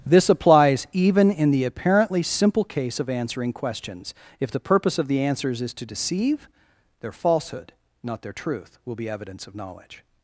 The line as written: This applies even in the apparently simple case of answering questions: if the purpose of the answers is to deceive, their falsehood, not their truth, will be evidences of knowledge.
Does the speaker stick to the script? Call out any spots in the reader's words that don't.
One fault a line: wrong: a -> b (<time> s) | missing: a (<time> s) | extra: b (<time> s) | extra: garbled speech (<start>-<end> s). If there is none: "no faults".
wrong: evidences -> evidence (9.1 s)